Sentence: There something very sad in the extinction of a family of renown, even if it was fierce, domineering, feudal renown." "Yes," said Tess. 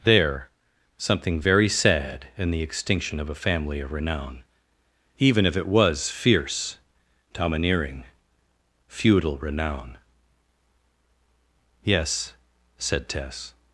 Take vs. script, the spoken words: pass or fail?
pass